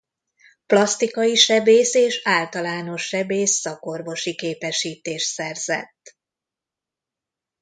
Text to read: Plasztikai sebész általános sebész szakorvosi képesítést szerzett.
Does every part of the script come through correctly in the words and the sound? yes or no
no